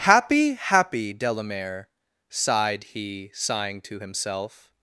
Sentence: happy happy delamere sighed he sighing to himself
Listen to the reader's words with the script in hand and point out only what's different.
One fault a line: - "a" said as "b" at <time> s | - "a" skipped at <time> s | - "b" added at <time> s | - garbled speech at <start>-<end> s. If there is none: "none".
none